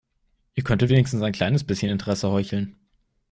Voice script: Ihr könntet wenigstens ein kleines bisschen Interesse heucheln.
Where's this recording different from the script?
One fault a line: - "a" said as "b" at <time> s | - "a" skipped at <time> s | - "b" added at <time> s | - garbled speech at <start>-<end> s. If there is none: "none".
none